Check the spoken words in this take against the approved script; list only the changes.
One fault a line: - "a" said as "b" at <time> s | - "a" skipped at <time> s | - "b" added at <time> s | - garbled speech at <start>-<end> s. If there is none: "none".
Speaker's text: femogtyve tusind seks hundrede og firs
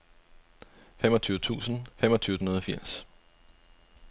- "seks" said as "femogtyve" at 2.0 s